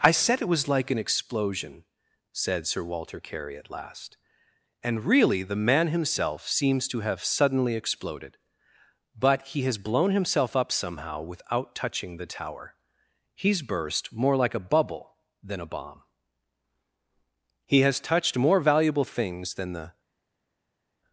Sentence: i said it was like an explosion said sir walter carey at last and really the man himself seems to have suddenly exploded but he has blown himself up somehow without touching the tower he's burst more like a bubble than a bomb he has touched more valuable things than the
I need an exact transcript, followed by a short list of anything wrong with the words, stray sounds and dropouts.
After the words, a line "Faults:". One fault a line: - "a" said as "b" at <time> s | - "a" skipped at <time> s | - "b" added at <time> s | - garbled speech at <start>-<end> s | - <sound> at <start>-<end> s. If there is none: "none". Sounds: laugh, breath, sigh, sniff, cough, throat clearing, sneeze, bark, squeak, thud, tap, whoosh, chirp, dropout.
i said it was like an explosion said sir walter carey at last and really the man himself seems to have suddenly exploded but he has blown himself up somehow without touching the tower he's burst more like a bubble than a bomb he has touched more valuable things than the
Faults:
none